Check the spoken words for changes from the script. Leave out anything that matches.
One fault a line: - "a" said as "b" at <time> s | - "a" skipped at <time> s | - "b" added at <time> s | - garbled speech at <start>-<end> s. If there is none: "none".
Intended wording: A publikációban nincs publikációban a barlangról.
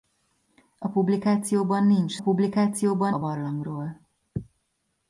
none